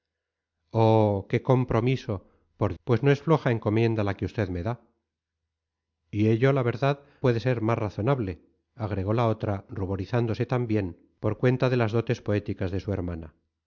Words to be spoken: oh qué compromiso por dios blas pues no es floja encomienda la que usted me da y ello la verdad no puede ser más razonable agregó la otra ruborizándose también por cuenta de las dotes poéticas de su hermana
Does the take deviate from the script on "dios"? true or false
true